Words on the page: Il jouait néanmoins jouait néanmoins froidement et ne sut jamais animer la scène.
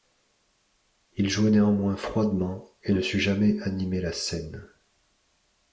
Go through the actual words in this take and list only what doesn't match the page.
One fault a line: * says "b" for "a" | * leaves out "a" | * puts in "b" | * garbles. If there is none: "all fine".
* leaves out "jouait néanmoins"